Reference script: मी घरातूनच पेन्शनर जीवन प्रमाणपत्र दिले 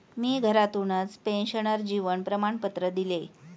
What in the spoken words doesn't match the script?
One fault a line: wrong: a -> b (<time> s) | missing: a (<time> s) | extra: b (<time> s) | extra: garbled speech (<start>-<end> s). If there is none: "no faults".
no faults